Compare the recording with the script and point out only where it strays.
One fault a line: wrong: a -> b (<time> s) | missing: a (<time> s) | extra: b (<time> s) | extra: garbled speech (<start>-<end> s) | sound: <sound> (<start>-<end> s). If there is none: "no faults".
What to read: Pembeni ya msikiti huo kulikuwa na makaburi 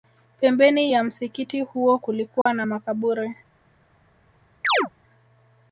sound: dropout (2.4-2.5 s)
sound: chirp (4.6-4.9 s)